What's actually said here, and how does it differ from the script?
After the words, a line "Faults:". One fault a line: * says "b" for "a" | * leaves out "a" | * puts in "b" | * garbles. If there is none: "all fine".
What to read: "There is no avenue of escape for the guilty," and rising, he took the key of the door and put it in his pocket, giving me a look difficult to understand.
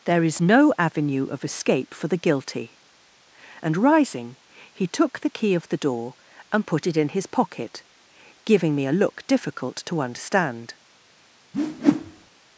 "There is no avenue of escape for the guilty," and rising, he took the key of the door and put it in his pocket, giving me a look difficult to understand.
Faults:
all fine